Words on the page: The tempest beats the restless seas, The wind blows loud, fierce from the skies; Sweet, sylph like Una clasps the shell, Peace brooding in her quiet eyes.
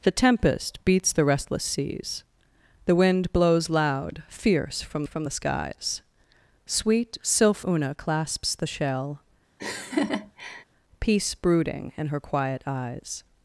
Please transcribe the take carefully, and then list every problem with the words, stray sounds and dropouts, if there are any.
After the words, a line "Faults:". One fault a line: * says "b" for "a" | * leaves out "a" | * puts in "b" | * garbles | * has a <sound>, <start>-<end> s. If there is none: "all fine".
The tempest beats the restless seas, The wind blows loud, fierce from from the skies; Sweet, sylph Una clasps the shell, Peace brooding in her quiet eyes.
Faults:
* puts in "from"
* leaves out "like"
* has a laugh, 9.6-10.6 s